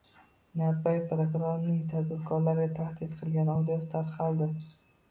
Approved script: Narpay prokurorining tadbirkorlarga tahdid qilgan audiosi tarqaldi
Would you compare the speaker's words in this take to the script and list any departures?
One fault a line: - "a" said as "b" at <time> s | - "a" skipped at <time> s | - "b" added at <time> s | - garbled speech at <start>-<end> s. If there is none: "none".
none